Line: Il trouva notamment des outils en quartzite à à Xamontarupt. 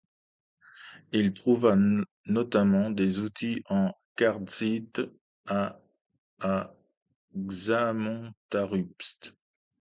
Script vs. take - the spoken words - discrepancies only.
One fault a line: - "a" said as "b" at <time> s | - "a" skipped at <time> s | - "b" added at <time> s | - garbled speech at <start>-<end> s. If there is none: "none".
none